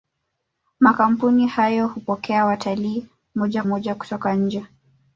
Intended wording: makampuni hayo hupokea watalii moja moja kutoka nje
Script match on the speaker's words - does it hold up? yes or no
yes